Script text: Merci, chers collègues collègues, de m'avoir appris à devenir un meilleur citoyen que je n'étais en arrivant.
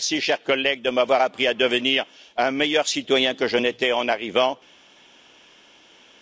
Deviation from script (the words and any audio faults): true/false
true